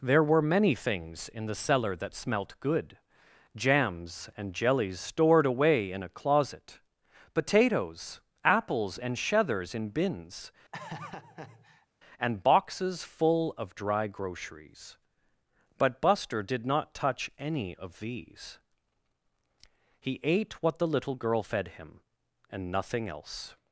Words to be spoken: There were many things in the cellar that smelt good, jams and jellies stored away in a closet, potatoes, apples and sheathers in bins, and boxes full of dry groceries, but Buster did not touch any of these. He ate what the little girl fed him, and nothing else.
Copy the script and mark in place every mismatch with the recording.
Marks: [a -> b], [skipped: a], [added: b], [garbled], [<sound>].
There were many things in the cellar that smelt good, jams and jellies stored away in a closet, potatoes, apples and sheathers in bins, [laugh] and boxes full of dry groceries, but Buster did not touch any of these. He ate what the little girl fed him, and nothing else.